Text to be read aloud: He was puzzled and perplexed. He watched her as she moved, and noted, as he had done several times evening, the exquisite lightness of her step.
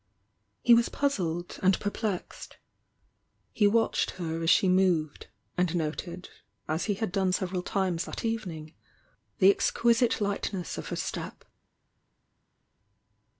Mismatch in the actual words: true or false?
true